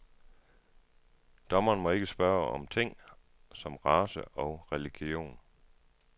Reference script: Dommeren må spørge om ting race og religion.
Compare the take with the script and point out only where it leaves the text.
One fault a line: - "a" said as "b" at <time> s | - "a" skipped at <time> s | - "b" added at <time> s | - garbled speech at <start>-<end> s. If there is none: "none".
- "ikke" added at 1.9 s
- "som" added at 3.5 s